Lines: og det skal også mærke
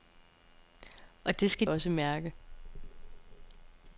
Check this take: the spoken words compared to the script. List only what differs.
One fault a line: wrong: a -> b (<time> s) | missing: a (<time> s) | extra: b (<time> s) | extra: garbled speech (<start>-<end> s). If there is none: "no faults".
no faults